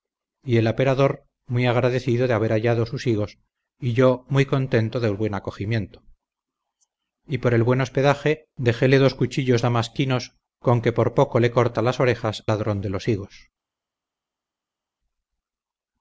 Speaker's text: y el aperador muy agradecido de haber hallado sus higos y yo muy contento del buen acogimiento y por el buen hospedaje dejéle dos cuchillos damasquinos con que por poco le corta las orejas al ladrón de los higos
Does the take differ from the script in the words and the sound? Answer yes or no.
yes